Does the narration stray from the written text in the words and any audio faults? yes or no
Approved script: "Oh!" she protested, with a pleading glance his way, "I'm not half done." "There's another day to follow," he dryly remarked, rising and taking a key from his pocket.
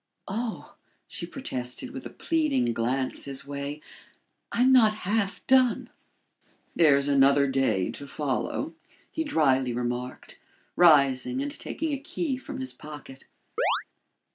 yes